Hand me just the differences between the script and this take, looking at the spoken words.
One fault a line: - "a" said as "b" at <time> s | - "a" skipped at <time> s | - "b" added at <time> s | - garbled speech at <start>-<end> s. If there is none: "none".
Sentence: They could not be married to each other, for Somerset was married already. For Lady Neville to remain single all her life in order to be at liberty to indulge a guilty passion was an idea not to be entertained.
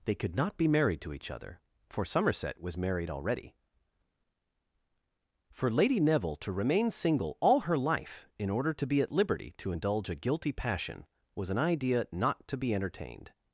none